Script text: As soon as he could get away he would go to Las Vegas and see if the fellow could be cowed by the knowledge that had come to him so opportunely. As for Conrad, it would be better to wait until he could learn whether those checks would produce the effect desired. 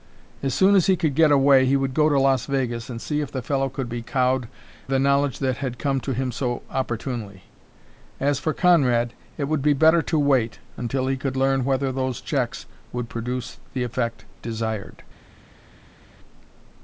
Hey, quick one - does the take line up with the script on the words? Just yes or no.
no